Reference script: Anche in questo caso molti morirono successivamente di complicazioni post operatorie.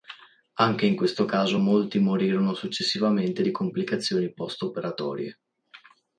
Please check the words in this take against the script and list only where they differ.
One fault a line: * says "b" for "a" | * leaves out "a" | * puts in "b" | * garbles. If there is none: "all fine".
all fine